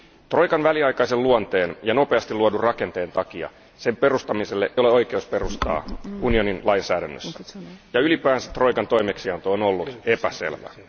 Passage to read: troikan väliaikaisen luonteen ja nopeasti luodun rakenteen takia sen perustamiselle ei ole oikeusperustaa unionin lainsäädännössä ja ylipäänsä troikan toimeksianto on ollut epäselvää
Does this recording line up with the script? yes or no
no